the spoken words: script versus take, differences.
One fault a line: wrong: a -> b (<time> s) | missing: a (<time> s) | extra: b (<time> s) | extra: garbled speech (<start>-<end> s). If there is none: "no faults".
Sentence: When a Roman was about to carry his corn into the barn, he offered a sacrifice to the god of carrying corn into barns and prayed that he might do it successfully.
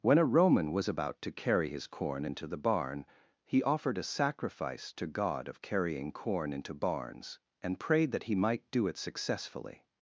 missing: the (5.1 s)